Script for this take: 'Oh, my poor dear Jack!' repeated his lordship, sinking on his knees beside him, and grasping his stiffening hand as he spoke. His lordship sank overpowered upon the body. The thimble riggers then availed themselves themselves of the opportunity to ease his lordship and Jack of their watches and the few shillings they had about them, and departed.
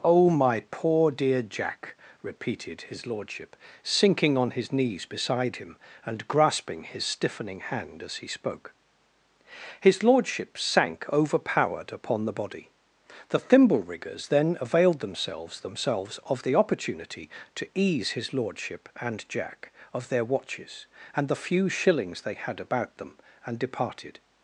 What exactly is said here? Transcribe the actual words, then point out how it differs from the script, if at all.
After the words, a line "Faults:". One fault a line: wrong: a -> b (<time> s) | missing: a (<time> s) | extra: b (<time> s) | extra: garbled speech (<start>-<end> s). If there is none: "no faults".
'Oh, my poor dear Jack!' repeated his lordship, sinking on his knees beside him, and grasping his stiffening hand as he spoke. His lordship sank overpowered upon the body. The thimble riggers then availed themselves themselves of the opportunity to ease his lordship and Jack of their watches and the few shillings they had about them, and departed.
Faults:
no faults